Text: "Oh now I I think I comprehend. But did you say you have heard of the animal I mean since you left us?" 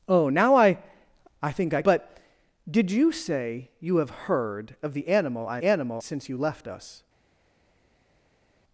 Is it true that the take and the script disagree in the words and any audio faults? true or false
true